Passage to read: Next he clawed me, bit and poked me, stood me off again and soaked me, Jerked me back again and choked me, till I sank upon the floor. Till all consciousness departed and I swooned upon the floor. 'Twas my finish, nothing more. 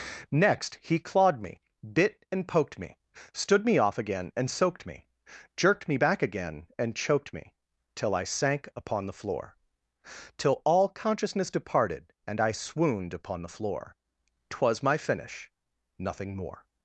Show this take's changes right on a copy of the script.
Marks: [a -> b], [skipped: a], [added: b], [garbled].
Next he clawed me, bit and poked me, stood me off again and soaked me, Jerked me back again and choked me, till I sank upon the floor. Till all consciousness departed and I swooned upon the floor. 'Twas my finish, nothing more.